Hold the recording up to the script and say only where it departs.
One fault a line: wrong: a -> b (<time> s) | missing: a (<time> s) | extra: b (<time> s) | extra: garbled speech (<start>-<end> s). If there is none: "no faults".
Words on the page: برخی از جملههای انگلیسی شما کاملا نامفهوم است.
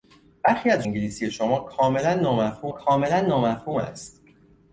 missing: جملههای (0.8 s)
extra: کاملا نامفهوم (2.7 s)